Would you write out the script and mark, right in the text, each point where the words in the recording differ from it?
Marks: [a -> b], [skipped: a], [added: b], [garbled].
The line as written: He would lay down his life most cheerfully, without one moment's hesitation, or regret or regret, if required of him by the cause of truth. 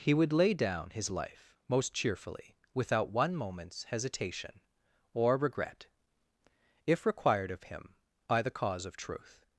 He would lay down his life most cheerfully, without one moment's hesitation, or regret [skipped: or regret,] if required of him by the cause of truth.